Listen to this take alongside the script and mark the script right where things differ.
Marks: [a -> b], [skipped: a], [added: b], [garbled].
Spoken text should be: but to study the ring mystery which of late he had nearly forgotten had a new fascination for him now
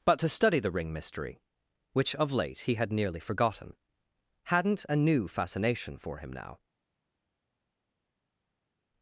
but to study the ring mystery which of late he had nearly forgotten [had -> hadn't] a new fascination for him now